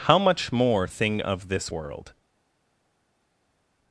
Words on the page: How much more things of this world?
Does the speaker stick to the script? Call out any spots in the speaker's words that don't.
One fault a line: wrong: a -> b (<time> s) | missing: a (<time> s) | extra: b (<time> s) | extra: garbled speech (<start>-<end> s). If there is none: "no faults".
wrong: things -> thing (0.9 s)